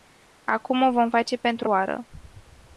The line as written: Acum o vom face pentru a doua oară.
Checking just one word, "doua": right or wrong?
wrong